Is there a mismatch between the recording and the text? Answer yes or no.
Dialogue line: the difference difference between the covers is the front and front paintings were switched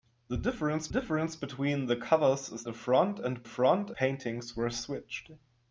no